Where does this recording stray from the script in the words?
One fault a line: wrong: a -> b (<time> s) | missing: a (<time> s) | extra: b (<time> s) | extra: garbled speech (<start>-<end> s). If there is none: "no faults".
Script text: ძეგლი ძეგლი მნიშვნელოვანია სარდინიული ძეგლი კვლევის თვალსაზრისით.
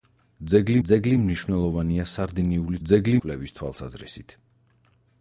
no faults